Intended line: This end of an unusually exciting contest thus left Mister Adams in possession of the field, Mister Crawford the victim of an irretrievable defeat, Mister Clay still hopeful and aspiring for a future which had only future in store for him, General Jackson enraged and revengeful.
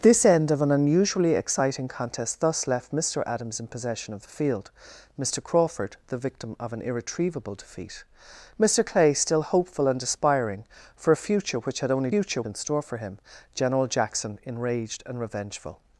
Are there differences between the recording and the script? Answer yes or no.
no